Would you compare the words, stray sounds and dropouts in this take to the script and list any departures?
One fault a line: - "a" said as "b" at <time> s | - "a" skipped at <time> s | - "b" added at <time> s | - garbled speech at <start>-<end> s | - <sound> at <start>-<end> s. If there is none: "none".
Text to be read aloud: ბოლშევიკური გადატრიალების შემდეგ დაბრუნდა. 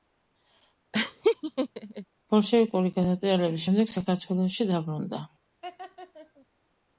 - laugh at 0.9-2.0 s
- "საქართველოში" added at 4.0 s
- laugh at 5.6-6.5 s